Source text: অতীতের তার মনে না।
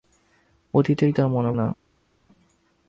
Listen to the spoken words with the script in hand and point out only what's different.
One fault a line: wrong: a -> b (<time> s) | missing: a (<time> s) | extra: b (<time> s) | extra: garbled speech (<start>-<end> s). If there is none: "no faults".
no faults